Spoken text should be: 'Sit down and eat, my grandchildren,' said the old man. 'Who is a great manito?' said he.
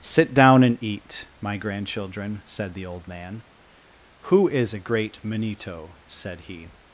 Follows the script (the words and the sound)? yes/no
yes